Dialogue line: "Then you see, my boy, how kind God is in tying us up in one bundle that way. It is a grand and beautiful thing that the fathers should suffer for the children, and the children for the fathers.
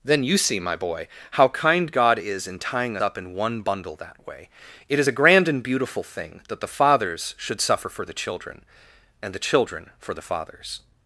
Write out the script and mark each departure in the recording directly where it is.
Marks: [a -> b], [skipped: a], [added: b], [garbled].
"Then you see, my boy, how kind God is in tying [skipped: us] up in one bundle that way. It is a grand and beautiful thing that the fathers should suffer for the children, and the children for the fathers.